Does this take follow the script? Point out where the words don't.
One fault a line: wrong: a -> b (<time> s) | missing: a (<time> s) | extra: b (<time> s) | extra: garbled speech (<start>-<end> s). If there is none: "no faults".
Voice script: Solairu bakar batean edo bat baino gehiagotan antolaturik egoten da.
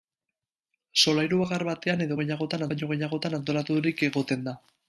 wrong: bat -> gehiagotan (2.2 s)